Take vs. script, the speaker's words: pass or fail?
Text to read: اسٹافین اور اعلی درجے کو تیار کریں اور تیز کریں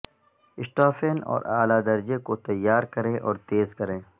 pass